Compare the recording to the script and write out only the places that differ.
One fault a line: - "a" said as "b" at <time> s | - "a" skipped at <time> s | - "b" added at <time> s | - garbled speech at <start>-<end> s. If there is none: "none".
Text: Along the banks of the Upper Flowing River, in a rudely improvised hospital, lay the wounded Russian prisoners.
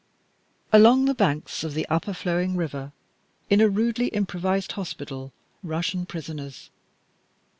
- "lay the wounded" skipped at 5.3 s